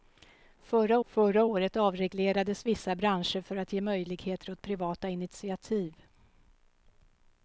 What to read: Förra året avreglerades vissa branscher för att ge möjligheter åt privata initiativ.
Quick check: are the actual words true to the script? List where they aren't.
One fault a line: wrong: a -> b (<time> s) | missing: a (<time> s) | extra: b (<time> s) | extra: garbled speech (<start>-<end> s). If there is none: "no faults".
extra: förra (1.0 s)